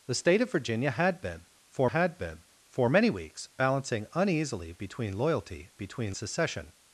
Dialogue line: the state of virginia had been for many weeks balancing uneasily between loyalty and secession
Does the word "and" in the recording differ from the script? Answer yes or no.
yes